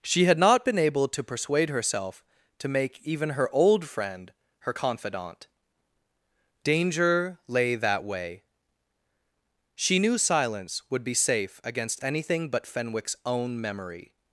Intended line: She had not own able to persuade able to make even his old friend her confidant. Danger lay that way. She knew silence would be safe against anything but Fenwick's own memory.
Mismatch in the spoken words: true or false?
true